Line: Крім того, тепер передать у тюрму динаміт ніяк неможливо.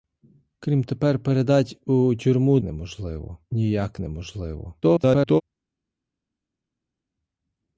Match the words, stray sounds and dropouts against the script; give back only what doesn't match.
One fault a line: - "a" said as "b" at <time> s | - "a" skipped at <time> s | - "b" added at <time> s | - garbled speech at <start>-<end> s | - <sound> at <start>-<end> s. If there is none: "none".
- "того" skipped at 0.8 s
- "динаміт" said as "неможливо" at 2.6 s
- garbled speech at 4.8-5.4 s